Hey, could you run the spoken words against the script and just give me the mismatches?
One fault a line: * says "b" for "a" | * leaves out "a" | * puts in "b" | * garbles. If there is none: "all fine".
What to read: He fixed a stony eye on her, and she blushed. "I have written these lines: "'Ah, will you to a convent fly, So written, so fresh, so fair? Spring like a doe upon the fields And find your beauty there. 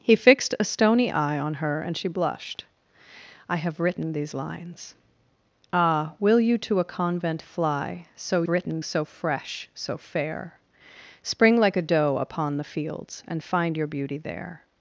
all fine